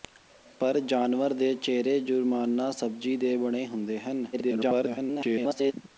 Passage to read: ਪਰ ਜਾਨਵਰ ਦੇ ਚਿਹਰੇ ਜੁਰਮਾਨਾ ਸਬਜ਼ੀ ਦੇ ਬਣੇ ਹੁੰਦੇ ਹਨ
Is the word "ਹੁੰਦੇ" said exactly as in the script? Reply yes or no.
yes